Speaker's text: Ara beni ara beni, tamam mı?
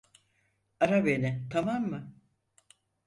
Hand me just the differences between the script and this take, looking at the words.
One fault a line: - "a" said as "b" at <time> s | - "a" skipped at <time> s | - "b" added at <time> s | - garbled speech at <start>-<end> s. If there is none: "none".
- "ara beni" skipped at 1.5 s